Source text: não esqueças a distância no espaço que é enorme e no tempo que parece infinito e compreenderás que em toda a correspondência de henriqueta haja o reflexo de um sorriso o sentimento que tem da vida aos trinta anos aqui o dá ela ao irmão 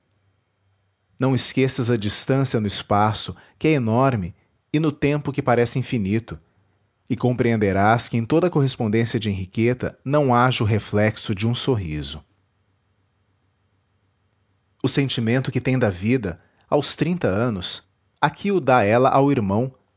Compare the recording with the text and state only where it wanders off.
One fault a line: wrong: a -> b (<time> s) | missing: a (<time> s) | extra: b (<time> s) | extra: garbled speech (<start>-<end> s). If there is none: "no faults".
extra: não (10.0 s)